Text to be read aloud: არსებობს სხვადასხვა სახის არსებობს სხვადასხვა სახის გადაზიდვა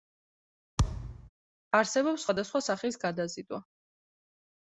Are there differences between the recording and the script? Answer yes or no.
yes